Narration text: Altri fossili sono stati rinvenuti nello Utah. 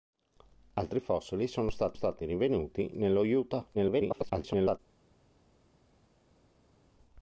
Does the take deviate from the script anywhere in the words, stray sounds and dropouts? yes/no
yes